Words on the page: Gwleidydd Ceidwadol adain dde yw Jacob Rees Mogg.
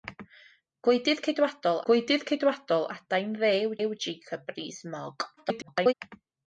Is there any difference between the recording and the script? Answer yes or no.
yes